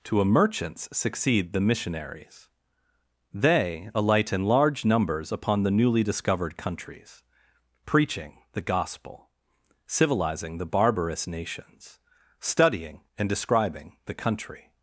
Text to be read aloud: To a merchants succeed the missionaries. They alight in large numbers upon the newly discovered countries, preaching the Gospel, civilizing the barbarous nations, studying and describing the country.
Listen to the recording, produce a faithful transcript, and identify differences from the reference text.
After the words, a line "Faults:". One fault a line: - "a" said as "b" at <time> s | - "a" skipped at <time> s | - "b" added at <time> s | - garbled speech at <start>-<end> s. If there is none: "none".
To a merchants succeed the missionaries. They alight in large numbers upon the newly discovered countries, preaching the Gospel, civilizing the barbarous nations, studying and describing the country.
Faults:
none